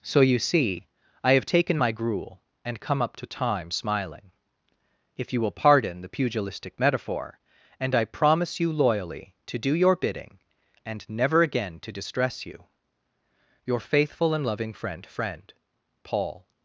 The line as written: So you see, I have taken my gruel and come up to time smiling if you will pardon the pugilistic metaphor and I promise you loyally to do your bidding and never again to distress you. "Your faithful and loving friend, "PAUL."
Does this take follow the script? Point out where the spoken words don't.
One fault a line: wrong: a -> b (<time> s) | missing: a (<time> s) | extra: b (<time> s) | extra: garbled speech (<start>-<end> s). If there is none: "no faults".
extra: friend (15.1 s)